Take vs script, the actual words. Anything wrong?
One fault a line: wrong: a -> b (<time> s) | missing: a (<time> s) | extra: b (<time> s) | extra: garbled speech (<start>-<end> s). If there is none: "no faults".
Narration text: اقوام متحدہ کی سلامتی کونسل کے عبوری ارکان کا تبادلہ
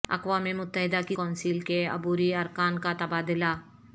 missing: سلامتی (1.1 s)